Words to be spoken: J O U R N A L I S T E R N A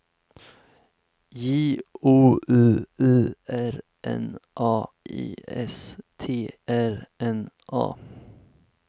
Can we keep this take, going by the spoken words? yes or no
no